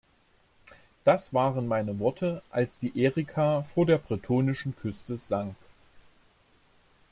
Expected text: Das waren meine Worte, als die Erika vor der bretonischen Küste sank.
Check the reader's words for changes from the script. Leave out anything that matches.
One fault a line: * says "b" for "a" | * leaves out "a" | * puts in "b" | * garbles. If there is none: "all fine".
all fine